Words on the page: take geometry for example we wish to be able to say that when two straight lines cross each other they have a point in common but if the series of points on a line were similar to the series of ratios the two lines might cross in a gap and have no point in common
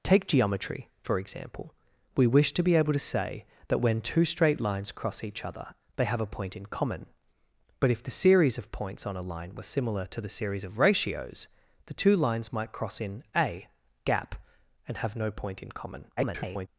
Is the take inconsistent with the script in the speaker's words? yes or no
yes